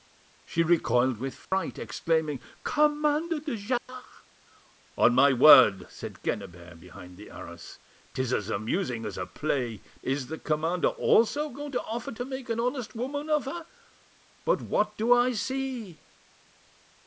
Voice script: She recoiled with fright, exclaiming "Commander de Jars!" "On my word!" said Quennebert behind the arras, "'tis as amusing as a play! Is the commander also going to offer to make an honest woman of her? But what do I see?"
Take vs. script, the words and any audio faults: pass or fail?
fail